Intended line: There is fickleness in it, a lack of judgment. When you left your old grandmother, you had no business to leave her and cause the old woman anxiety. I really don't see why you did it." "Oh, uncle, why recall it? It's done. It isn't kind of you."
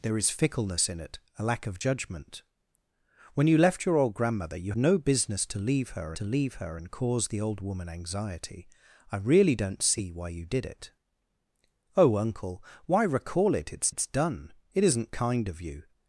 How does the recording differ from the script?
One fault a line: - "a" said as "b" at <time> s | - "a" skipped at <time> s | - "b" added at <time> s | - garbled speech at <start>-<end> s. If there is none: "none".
- "had" skipped at 4.7 s
- "to leave her" added at 6.1 s
- "it's" added at 13.9 s